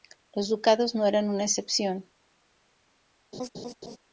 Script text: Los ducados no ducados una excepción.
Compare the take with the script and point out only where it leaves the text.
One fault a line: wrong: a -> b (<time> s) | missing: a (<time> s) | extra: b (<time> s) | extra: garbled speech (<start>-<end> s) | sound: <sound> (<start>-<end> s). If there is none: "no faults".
wrong: ducados -> eran (1.1 s)
sound: laugh (3.3-4.0 s)